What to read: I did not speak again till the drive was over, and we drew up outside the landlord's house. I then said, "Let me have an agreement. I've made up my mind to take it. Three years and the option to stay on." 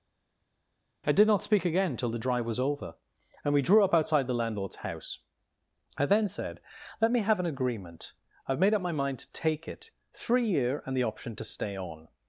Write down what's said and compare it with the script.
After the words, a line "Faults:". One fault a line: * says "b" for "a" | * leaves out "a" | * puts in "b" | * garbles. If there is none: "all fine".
I did not speak again till the drive was over, and we drew up outside the landlord's house. I then said, "Let me have an agreement. I've made up my mind to take it. Three year and the option to stay on."
Faults:
* says "year" for "years"